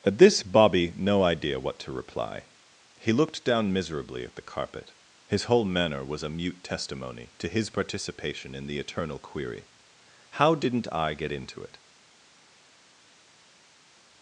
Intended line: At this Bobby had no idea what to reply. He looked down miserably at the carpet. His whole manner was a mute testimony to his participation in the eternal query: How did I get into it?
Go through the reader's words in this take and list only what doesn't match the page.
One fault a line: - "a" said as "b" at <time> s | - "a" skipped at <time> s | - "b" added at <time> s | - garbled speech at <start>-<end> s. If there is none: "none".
- "had" skipped at 0.9 s
- "did" said as "didn't" at 10.6 s